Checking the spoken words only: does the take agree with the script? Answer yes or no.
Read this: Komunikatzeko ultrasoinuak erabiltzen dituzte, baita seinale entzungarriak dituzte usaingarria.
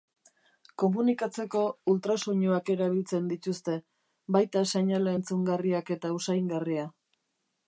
no